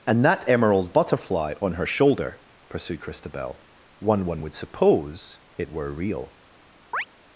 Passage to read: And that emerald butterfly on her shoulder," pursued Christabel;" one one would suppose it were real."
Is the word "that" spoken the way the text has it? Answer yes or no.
yes